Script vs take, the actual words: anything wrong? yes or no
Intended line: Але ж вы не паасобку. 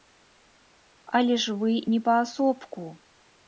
no